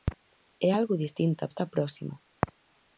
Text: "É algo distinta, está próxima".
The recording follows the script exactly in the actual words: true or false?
true